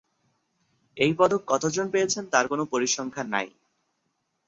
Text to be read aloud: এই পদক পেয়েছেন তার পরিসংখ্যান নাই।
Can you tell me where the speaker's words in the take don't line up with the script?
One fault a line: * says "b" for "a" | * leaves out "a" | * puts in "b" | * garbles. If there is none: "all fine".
* puts in "কতজন"
* puts in "কোন"